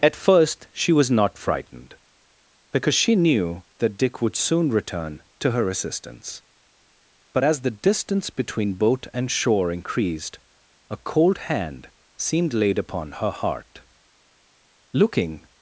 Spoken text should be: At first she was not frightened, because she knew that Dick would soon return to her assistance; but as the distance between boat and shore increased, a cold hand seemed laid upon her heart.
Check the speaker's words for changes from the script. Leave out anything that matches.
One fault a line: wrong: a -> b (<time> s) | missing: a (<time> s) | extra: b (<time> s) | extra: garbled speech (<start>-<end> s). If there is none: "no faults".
extra: Looking (14.9 s)